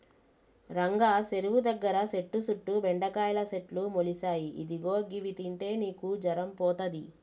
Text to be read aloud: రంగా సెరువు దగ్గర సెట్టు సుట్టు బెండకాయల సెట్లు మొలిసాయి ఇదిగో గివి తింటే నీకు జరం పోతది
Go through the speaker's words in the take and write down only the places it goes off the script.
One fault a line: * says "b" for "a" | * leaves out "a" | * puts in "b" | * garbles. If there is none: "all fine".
all fine